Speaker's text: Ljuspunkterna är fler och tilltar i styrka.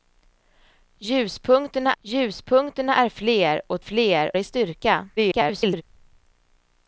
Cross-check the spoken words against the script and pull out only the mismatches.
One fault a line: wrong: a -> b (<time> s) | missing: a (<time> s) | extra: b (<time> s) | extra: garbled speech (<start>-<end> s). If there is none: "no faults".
extra: ljuspunkterna (2.0 s)
wrong: tilltar -> fler (3.8 s)
extra: garbled speech (5.2-5.8 s)